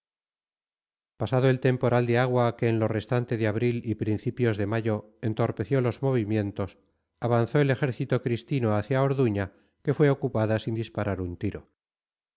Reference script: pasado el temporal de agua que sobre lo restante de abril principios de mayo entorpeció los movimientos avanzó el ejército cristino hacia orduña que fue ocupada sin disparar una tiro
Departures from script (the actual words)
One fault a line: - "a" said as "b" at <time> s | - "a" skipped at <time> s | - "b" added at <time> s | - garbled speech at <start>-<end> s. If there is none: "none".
- "sobre" said as "en" at 2.7 s
- "y" added at 3.8 s
- "una" said as "un" at 11.2 s